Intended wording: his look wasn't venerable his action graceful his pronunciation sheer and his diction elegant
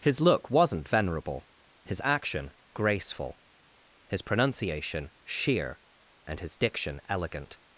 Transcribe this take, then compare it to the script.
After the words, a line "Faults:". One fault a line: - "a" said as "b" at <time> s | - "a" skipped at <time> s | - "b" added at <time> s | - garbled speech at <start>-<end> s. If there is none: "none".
his look wasn't venerable his action graceful his pronunciation sheer and his diction elegant
Faults:
none